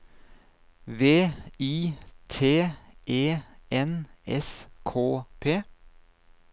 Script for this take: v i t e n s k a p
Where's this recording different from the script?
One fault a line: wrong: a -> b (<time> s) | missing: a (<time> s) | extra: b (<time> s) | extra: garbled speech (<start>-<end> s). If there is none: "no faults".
missing: a (5.2 s)